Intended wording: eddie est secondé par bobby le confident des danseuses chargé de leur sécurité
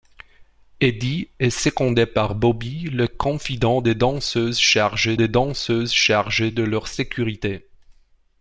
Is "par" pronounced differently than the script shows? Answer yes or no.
no